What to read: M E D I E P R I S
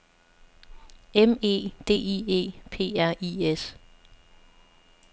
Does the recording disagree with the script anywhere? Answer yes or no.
no